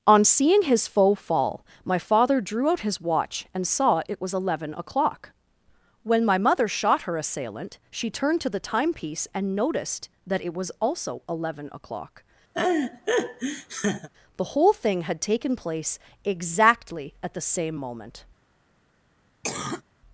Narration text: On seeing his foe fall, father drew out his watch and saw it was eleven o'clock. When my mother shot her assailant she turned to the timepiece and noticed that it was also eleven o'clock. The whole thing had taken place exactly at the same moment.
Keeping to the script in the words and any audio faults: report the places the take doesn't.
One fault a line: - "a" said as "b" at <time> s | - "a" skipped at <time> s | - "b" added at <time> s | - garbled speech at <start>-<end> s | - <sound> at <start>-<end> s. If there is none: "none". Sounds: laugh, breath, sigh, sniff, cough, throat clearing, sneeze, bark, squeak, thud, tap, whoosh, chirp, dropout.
- "my" added at 1.9 s
- laugh at 12.5-14.1 s
- cough at 19.4-19.8 s